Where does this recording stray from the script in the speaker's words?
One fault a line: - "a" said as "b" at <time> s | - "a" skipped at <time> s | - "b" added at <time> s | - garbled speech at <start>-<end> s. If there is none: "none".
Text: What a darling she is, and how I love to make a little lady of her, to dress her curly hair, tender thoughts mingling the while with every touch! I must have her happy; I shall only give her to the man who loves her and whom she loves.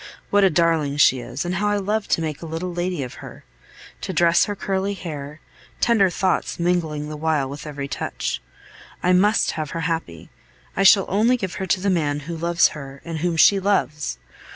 none